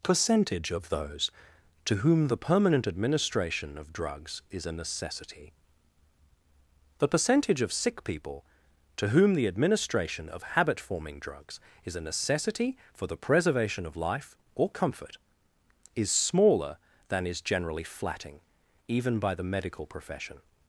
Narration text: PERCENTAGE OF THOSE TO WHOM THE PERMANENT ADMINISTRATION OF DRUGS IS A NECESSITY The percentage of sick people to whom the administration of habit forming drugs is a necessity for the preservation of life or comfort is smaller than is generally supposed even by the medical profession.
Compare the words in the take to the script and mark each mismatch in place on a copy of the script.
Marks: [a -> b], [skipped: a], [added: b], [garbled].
PERCENTAGE OF THOSE TO WHOM THE PERMANENT ADMINISTRATION OF DRUGS IS A NECESSITY The percentage of sick people to whom the administration of habit forming drugs is a necessity for the preservation of life or comfort is smaller than is generally [supposed -> flatting] even by the medical profession.